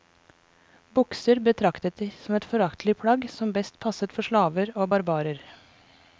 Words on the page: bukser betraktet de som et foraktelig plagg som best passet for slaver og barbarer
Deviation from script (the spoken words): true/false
false